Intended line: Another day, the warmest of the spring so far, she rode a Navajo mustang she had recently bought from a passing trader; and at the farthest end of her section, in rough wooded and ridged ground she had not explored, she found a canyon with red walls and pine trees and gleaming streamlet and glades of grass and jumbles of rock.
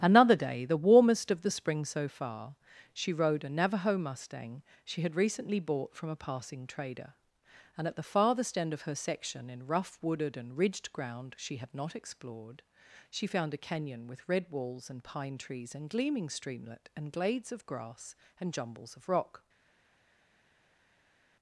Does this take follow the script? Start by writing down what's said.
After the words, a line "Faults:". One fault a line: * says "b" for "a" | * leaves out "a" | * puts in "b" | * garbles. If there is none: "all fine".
Another day, the warmest of the spring so far, she rode a Navajo mustang she had recently bought from a passing trader; and at the farthest end of her section, in rough wooded and ridged ground she had not explored, she found a canyon with red walls and pine trees and gleaming streamlet and glades of grass and jumbles of rock.
Faults:
all fine